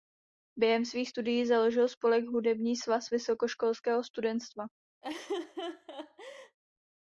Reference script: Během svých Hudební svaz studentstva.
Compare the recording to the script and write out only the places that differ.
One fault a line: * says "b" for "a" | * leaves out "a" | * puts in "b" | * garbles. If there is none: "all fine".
* puts in "studií založil spolek"
* puts in "vysokoškolského"